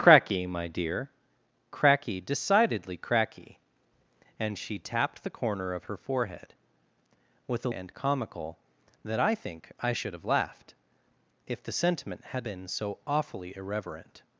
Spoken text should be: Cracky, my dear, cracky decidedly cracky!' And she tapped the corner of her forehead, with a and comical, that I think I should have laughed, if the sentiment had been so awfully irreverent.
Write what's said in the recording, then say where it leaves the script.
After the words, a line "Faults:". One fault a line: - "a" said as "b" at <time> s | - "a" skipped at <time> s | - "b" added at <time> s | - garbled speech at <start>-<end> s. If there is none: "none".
Cracky, my dear, cracky decidedly cracky!' And she tapped the corner of her forehead, with a and comical, that I think I should have laughed, if the sentiment had been so awfully irreverent.
Faults:
none